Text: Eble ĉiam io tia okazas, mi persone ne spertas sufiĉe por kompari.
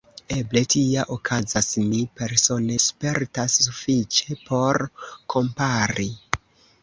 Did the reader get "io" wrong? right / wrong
wrong